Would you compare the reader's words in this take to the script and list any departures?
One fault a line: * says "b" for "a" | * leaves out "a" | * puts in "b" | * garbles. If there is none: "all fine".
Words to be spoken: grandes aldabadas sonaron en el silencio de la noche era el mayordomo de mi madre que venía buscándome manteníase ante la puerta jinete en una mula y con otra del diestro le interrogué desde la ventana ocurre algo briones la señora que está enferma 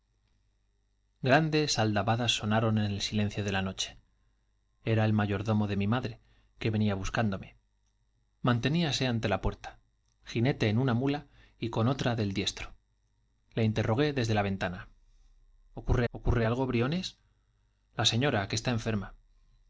* puts in "ocurre"